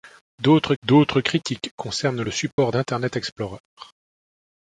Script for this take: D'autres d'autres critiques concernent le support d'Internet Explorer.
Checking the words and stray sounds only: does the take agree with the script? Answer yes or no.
no